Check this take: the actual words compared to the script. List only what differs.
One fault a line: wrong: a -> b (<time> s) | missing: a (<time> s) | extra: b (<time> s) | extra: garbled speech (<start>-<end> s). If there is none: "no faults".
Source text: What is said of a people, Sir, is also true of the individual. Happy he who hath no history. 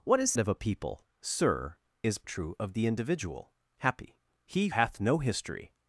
missing: said (0.3 s)
missing: also (2.2 s)
missing: who (4.7 s)